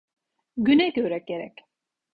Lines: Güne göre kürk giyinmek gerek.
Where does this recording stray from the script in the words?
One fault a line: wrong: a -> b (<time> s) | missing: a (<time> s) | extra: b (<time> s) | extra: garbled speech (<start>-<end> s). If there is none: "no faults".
missing: kürk giyinmek (1.2 s)